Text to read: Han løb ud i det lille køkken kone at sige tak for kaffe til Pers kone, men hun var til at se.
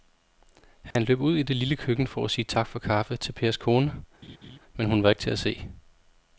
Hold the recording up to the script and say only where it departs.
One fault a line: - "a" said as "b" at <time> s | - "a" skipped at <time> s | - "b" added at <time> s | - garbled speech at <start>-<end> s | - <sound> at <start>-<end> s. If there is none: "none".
- dropout at 0.9-1.0 s
- "kone" said as "for" at 2.1 s
- laugh at 4.2-4.6 s
- "ikke" added at 5.1 s